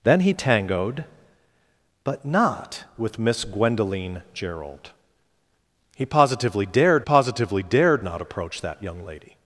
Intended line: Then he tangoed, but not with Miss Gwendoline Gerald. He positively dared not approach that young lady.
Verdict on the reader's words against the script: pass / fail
fail